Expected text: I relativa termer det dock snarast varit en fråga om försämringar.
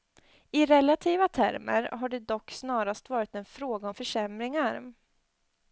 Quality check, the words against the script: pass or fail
fail